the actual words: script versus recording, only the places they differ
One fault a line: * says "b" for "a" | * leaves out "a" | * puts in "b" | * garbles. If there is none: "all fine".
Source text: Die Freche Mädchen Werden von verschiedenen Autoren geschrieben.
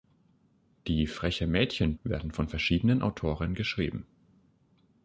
all fine